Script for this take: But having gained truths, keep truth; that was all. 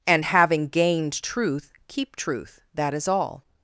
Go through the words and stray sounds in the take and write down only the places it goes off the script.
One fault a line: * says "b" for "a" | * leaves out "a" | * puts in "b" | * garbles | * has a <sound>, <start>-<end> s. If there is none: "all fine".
* says "And" for "But"
* says "truth" for "truths"
* says "is" for "was"